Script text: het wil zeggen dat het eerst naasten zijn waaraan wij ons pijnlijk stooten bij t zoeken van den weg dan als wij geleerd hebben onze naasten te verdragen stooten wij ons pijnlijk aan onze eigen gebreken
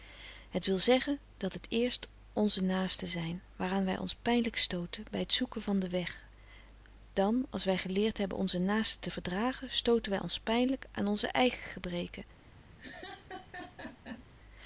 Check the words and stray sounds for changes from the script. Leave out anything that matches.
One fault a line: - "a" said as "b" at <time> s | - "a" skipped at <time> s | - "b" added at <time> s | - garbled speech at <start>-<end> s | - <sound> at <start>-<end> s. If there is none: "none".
- "onze" added at 2.3 s
- laugh at 12.8-14.2 s